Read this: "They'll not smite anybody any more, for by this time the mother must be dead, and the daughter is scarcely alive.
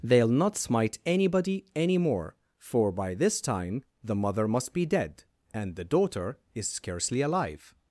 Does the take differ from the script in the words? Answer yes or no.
no